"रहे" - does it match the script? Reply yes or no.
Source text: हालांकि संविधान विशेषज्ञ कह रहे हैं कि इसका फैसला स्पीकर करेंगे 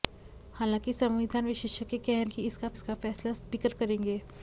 no